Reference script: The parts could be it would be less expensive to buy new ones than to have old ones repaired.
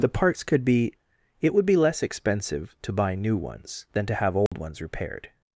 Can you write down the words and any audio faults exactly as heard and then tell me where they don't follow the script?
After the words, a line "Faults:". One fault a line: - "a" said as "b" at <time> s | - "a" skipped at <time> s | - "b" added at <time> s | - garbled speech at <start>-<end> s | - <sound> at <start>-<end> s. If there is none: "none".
The parts could be it would be less expensive to buy new ones than to have old ones repaired.
Faults:
- dropout at 4.5-4.5 s